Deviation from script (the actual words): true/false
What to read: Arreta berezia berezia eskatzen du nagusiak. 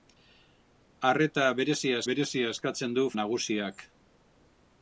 false